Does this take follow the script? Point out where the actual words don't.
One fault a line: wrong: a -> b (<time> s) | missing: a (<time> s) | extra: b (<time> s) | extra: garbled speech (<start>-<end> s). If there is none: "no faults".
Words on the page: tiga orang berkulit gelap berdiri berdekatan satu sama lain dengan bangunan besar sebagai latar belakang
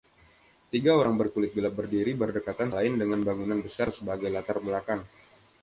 missing: satu sama (2.7 s)